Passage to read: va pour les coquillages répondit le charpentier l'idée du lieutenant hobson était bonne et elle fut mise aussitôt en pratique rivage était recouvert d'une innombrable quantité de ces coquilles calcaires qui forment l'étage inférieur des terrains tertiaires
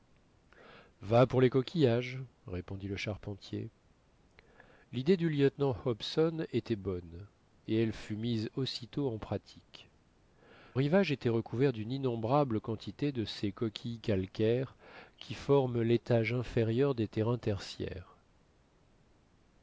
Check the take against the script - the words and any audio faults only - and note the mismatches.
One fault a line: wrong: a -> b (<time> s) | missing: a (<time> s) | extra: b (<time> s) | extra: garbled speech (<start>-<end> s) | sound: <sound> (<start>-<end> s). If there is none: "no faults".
no faults